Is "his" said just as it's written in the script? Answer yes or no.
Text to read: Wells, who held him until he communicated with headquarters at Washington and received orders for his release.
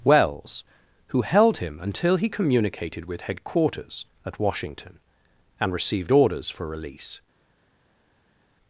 no